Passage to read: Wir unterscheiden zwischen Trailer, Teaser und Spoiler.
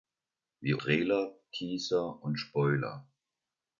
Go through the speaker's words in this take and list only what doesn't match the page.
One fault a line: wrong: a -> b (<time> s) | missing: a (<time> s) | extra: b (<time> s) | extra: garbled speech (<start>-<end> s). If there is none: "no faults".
missing: unterscheiden zwischen (0.8 s)